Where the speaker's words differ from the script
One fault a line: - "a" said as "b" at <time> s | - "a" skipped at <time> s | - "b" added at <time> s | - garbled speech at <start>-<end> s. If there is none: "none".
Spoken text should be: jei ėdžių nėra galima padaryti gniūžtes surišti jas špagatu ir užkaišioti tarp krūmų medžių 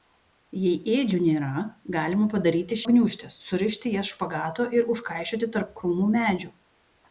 none